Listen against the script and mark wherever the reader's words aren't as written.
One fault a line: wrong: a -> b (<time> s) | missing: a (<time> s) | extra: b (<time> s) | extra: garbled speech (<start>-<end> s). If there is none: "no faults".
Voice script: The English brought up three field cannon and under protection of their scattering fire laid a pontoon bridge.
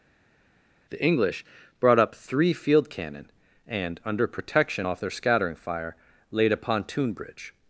wrong: of -> off (4.8 s)